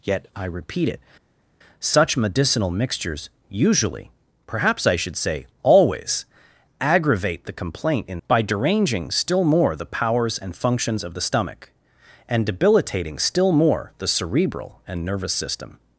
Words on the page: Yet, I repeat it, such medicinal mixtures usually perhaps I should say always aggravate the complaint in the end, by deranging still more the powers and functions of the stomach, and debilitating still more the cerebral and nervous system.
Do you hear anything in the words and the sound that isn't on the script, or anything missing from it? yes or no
yes